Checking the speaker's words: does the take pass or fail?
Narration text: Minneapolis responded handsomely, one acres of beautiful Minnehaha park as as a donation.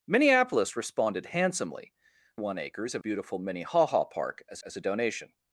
pass